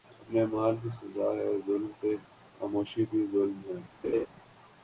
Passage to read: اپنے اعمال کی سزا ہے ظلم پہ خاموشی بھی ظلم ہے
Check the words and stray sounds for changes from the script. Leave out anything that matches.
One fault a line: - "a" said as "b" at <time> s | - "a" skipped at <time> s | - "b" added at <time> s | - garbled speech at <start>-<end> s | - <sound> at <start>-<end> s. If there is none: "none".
- laugh at 4.0-4.3 s